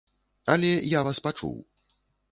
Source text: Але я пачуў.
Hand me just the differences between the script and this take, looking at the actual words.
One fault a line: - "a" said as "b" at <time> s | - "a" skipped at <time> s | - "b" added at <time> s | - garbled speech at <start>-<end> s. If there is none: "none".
- "вас" added at 1.1 s